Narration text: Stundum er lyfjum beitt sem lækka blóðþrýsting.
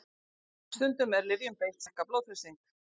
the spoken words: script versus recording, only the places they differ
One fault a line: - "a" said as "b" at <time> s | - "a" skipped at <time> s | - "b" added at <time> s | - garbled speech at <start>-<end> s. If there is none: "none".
- "sem" skipped at 1.9 s